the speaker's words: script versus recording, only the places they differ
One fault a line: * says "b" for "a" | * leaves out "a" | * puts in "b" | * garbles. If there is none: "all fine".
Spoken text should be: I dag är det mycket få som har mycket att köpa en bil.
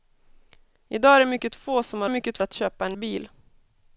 all fine